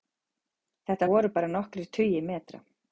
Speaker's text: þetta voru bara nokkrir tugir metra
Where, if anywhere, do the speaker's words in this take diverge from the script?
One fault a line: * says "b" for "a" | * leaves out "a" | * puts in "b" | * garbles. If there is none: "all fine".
all fine